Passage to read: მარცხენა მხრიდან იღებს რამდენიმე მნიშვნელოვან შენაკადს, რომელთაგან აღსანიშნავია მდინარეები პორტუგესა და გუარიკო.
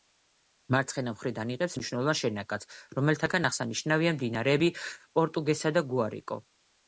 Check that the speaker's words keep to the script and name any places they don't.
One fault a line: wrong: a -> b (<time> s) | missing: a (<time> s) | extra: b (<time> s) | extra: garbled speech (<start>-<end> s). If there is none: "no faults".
missing: რამდენიმე (1.8 s)